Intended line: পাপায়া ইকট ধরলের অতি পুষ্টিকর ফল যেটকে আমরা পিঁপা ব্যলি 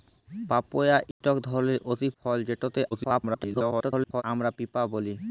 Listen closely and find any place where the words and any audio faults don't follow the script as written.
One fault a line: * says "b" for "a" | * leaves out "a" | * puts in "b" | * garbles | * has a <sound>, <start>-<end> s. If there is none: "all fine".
* has a dropout, 1.1-1.2 s
* leaves out "পুষ্টিকর"
* garbles